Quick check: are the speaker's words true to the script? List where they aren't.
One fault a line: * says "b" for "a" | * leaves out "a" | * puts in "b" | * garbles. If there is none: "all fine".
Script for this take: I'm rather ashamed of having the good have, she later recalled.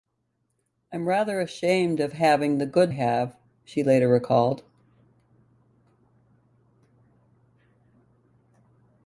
all fine